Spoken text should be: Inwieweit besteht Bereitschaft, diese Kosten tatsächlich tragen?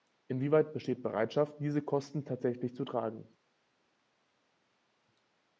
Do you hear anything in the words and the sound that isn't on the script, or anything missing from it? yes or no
yes